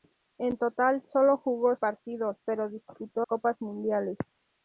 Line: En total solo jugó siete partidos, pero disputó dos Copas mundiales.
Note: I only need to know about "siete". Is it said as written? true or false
false